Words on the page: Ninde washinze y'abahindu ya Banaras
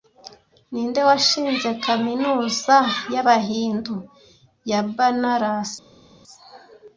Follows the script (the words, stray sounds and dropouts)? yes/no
no